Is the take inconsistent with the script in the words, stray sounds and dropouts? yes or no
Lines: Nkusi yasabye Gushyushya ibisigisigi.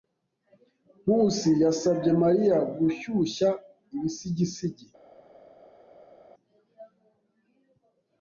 yes